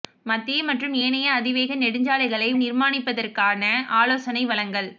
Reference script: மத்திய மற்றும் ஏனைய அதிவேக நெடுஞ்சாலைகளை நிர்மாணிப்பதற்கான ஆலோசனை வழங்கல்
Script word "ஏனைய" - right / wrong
right